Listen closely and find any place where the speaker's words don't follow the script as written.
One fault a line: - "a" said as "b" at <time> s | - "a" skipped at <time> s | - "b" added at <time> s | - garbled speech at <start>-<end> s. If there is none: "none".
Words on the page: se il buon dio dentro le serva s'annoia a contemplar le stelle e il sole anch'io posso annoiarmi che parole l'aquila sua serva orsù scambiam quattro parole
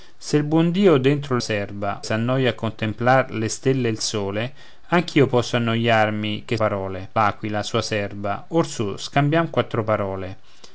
none